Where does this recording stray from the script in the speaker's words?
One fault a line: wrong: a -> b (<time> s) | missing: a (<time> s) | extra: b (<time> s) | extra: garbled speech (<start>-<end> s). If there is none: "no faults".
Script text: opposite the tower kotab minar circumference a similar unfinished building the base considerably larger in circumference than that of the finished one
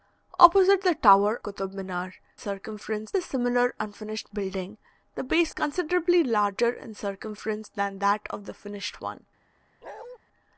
no faults